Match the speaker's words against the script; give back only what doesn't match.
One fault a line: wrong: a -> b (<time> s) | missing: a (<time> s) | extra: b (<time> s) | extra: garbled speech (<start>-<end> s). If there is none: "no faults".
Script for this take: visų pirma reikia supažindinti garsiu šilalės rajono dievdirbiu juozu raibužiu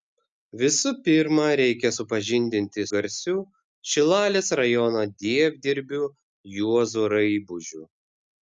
no faults